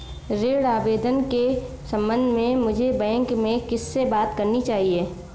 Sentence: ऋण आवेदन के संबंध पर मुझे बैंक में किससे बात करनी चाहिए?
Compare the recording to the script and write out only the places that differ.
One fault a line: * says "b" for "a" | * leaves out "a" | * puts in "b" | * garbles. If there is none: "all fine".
* says "में" for "पर"